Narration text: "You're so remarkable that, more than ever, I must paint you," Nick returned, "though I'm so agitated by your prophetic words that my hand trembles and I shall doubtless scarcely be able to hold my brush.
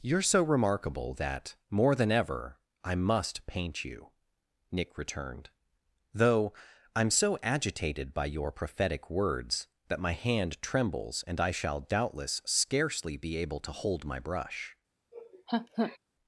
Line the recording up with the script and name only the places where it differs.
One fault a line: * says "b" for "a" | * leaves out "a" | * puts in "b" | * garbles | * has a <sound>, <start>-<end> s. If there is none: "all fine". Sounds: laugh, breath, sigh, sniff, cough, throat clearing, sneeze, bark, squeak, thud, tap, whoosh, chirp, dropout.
* has a laugh, 15.1-16.0 s